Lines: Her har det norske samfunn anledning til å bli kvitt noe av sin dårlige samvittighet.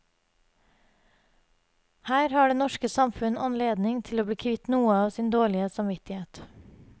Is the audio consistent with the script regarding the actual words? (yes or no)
yes